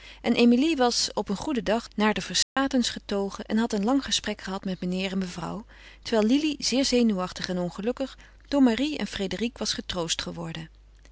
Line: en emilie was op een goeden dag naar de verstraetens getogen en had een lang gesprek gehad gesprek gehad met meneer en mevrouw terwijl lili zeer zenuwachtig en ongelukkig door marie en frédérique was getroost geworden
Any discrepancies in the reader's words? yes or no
yes